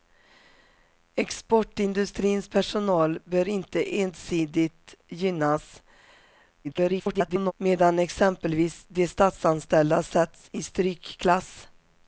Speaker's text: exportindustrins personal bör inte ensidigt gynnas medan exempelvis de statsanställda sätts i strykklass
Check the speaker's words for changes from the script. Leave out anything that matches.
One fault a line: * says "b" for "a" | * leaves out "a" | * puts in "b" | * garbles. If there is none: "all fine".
* garbles